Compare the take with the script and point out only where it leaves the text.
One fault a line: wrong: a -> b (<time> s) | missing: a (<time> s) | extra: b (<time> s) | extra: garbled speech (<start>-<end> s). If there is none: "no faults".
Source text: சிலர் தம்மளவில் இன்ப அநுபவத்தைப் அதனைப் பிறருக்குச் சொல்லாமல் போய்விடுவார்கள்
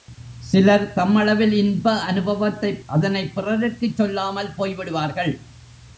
no faults